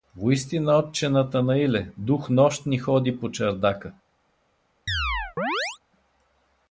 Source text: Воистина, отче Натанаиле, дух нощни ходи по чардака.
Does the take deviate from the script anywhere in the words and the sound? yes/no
yes